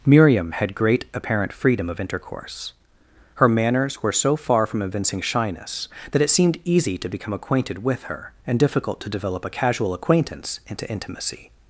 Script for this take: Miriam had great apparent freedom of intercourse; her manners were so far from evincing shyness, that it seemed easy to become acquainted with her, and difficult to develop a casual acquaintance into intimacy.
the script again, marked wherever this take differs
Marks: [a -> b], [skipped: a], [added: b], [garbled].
Miriam had great apparent freedom of intercourse; her manners were so far from evincing shyness, that it seemed easy to become acquainted with her, and difficult to develop a casual acquaintance into intimacy.